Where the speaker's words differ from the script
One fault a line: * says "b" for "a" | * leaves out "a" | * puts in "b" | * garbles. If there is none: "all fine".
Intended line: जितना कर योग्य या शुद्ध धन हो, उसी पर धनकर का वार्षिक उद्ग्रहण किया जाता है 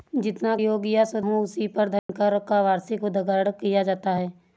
* leaves out "कर"
* leaves out "धन"